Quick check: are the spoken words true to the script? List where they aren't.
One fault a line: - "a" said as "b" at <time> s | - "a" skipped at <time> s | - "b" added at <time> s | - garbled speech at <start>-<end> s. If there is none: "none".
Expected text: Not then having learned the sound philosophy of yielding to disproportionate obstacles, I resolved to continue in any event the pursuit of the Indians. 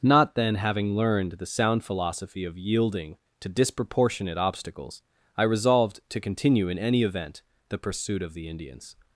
none